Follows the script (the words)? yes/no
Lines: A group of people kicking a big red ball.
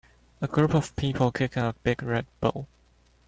yes